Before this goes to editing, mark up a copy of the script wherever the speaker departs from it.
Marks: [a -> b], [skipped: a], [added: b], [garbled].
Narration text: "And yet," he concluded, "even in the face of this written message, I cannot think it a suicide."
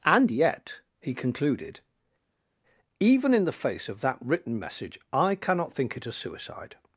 "And yet," he concluded, "even in the face of [this -> that] written message, I cannot think it a suicide."